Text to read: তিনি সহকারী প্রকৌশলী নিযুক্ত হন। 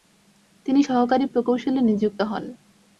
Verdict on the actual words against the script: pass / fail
pass